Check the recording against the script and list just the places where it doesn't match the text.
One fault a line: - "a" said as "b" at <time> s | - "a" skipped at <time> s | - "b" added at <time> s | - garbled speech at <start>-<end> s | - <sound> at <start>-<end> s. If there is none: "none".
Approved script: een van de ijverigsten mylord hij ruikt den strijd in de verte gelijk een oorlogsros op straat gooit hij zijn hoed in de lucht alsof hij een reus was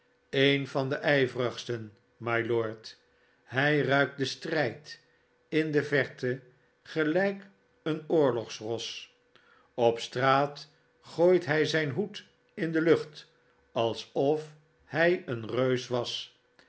none